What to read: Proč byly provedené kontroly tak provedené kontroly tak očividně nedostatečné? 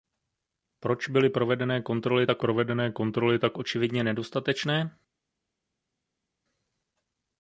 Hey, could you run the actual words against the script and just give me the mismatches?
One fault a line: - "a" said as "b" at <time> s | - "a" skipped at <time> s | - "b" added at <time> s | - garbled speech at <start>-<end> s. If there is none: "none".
none